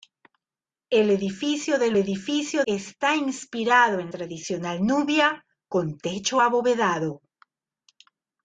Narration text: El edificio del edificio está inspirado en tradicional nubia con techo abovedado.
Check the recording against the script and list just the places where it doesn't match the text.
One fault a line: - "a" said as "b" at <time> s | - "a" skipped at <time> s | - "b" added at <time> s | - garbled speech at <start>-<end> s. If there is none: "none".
none